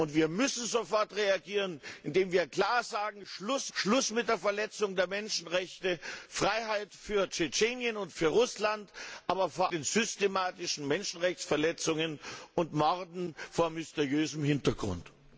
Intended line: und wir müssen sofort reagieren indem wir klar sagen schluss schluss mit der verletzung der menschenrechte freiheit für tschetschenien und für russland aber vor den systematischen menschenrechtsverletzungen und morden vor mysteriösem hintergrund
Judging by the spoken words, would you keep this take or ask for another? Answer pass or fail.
pass